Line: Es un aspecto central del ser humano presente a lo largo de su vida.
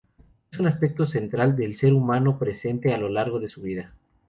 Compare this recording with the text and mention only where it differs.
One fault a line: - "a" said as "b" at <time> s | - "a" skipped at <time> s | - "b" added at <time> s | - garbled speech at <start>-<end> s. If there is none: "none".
none